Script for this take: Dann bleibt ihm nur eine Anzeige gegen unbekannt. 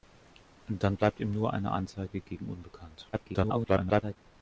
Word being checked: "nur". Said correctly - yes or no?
yes